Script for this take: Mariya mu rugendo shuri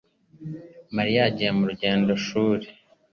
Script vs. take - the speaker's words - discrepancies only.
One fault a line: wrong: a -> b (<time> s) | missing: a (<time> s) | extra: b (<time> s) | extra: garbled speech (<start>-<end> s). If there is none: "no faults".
extra: yagiye (1.3 s)